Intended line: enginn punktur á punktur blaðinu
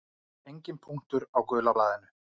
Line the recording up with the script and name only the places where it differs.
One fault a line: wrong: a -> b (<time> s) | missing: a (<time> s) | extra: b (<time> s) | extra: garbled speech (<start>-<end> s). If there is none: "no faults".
wrong: punktur -> gula (1.5 s)